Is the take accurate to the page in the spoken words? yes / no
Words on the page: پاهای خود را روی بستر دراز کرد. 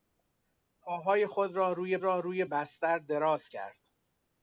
no